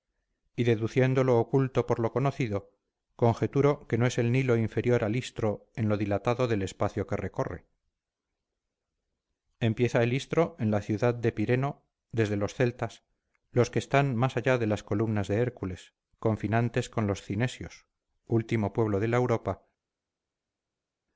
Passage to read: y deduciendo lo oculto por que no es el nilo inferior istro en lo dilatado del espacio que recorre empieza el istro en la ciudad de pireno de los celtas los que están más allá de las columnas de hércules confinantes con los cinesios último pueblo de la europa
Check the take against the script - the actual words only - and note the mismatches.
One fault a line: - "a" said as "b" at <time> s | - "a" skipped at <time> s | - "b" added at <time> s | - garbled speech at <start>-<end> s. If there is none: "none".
- "lo conocido conjeturo" added at 2.0 s
- "al" added at 5.0 s
- "de" said as "desde" at 12.1 s